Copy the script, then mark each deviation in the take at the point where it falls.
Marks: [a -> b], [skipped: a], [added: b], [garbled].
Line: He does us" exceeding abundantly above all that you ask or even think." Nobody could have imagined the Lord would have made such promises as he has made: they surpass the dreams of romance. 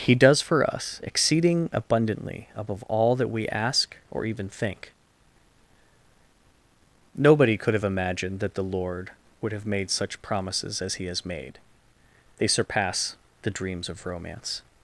He does [added: for] us" exceeding abundantly above all that [you -> we] ask or even think." Nobody could have imagined [added: that] the Lord would have made such promises as he has made: they surpass the dreams of romance.